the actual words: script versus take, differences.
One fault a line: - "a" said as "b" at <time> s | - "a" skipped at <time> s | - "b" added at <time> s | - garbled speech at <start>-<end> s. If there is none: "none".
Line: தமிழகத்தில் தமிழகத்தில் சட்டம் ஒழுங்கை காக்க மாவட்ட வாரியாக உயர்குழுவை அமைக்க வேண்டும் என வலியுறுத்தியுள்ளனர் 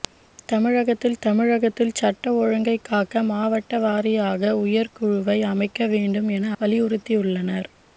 none